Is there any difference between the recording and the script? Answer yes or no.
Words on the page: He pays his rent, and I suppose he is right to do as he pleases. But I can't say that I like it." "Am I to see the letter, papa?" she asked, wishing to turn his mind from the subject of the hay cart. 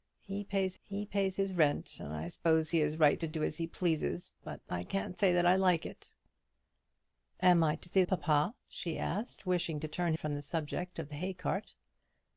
yes